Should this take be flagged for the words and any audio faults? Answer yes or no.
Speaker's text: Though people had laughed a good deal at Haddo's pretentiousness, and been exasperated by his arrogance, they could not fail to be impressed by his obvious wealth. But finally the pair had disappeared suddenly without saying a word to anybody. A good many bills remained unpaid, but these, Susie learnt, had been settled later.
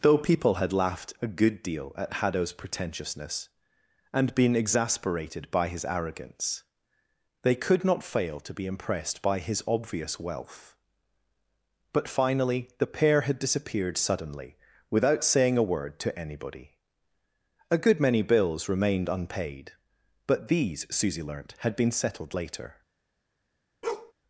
yes